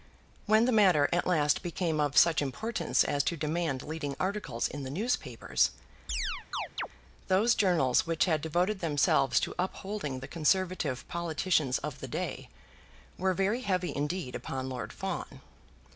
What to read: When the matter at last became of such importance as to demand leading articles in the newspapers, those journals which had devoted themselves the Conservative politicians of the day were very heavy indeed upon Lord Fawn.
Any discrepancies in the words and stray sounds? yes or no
yes